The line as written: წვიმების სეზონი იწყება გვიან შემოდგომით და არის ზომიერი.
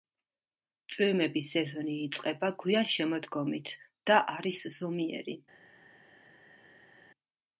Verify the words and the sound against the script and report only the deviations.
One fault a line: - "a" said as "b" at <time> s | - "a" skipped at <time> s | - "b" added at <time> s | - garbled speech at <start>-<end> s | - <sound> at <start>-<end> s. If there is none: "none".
none